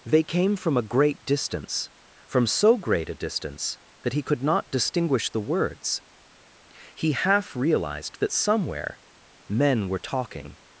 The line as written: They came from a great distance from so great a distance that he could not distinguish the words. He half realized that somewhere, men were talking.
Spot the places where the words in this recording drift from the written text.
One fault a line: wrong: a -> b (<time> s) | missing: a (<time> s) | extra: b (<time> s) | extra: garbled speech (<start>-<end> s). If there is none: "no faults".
no faults